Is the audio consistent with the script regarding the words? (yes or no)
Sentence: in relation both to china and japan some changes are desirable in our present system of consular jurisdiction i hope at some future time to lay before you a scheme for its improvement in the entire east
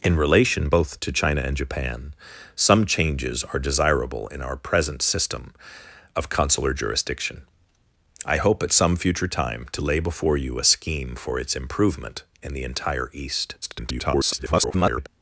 no